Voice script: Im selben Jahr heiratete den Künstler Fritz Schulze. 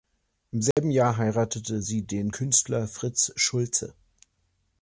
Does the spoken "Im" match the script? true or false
true